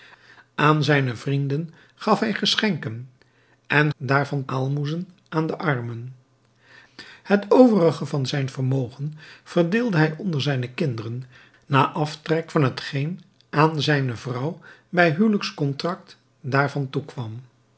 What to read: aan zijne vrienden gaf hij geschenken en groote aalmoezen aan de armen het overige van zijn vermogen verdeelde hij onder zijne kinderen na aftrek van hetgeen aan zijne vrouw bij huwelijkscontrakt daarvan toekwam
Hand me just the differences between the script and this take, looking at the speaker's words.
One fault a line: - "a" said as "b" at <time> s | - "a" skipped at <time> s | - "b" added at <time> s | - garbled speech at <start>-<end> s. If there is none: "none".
- "groote" said as "daarvan" at 4.0 s